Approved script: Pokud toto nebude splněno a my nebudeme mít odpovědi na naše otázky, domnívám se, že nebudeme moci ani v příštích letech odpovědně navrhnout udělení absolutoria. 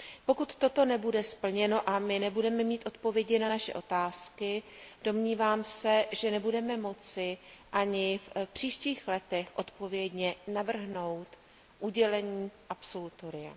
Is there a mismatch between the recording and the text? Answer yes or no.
no